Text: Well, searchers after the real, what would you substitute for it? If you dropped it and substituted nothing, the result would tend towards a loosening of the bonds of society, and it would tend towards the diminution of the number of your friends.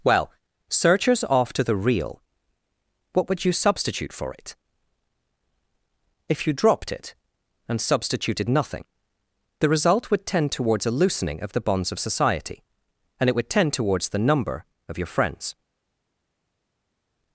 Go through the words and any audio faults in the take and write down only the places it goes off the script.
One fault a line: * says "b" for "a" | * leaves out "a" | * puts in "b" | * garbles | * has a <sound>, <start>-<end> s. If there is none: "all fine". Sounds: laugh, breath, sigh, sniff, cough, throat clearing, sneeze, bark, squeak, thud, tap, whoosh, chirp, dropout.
* leaves out "diminution of the"